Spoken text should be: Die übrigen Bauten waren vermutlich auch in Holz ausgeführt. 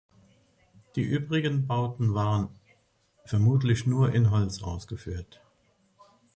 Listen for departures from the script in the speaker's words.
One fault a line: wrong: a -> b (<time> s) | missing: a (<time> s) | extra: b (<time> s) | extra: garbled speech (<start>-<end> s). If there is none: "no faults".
wrong: auch -> nur (3.9 s)